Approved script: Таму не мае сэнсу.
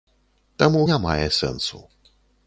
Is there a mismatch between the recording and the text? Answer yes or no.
no